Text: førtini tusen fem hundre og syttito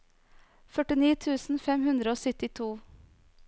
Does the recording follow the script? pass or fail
pass